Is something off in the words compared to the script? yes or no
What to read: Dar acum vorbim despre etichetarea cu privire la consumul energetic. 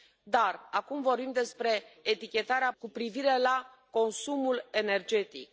no